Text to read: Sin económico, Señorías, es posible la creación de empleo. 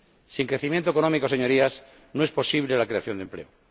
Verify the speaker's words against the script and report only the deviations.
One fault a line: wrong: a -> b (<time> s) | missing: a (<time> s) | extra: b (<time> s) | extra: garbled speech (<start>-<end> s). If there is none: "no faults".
extra: crecimiento (0.5 s)
extra: no (2.1 s)